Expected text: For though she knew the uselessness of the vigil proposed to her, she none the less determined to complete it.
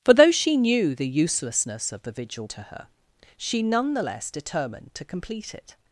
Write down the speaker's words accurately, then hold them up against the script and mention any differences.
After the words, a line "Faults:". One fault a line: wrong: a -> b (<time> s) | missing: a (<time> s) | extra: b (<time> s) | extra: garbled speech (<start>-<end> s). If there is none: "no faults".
For though she knew the uselessness of the vigil to her, she none the less determined to complete it.
Faults:
missing: proposed (2.5 s)